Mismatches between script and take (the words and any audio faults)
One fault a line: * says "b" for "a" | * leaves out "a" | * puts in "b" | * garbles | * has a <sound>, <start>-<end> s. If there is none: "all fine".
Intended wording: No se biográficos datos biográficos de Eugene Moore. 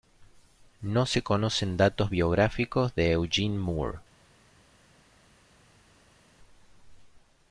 * says "conocen" for "biográficos"